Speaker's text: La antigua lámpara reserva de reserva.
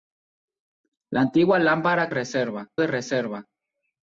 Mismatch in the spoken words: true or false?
false